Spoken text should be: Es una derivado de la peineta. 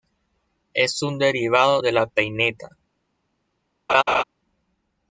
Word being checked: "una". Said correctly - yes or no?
no